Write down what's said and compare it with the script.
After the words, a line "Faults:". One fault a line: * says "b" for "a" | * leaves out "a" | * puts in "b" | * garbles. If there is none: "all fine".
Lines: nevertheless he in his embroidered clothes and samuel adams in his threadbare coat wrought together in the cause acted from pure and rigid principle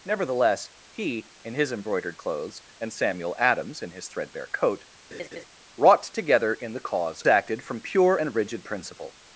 nevertheless he in his embroidered clothes and samuel adams in his threadbare coat wrought together in the cause acted from pure and rigid principle
Faults:
all fine